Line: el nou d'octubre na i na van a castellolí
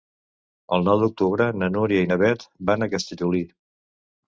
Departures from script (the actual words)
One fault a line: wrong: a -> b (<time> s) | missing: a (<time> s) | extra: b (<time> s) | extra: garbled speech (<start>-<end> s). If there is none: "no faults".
extra: núria (1.8 s)
extra: beth (2.2 s)